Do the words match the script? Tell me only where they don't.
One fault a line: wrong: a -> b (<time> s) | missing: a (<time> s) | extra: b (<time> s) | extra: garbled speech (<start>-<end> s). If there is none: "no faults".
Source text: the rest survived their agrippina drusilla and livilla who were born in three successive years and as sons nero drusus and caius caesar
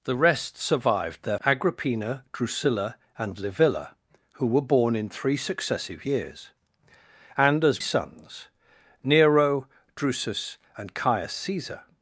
no faults